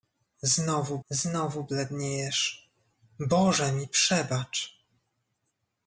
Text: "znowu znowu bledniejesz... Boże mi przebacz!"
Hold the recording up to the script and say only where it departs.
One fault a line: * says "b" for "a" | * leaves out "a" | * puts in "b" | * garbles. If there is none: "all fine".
all fine